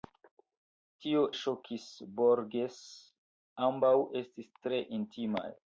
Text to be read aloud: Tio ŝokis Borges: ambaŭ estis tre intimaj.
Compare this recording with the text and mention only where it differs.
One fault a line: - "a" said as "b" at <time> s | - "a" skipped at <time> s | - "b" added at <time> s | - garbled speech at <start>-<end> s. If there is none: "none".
none